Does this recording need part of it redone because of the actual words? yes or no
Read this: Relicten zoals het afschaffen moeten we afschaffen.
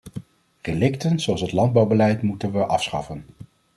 yes